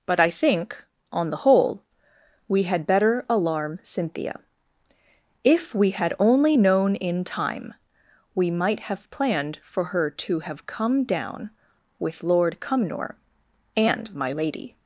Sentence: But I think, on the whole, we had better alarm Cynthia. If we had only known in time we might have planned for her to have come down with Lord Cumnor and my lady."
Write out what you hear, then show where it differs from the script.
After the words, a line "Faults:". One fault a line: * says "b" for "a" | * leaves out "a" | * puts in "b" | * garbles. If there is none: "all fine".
But I think, on the whole, we had better alarm Cynthia. If we had only known in time we might have planned for her to have come down with Lord Cumnor and my lady."
Faults:
all fine